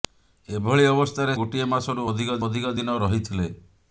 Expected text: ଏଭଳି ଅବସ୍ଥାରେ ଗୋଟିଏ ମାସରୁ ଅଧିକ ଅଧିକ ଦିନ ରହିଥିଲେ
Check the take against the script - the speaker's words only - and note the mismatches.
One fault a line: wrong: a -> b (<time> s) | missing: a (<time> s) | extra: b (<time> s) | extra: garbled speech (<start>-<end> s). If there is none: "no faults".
no faults